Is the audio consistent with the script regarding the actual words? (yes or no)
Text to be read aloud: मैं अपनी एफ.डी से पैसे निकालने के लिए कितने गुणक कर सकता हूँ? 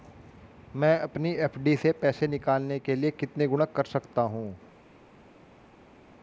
yes